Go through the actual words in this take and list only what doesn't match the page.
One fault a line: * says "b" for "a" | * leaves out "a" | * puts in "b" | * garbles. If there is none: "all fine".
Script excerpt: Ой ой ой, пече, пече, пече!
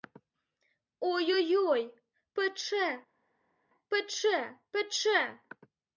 all fine